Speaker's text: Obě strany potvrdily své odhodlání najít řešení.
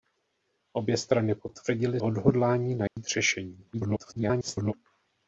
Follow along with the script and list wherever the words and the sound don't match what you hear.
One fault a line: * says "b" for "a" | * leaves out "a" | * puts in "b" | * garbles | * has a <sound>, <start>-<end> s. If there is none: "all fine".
* leaves out "své"
* has a dropout, 2.9-3.0 s
* garbles